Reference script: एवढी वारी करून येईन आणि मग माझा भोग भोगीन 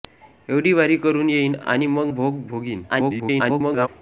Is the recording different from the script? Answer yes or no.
yes